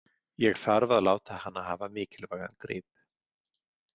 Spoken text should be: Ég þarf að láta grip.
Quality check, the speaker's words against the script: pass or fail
fail